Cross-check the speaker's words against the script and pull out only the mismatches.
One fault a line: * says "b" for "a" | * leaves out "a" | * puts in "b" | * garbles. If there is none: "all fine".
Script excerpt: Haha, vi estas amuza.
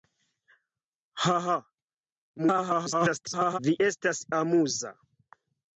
* garbles